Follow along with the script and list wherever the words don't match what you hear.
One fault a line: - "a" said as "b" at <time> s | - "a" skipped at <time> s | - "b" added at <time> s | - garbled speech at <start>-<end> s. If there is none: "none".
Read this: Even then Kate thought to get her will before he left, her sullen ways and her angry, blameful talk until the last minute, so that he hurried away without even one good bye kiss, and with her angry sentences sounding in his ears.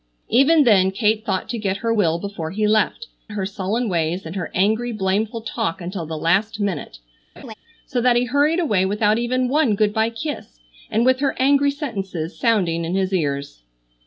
none